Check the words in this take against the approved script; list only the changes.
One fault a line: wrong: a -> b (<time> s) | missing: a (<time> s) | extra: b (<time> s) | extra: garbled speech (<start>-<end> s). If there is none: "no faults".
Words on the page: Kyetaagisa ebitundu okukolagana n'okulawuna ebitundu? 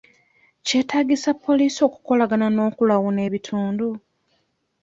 wrong: ebitundu -> poliisi (1.4 s)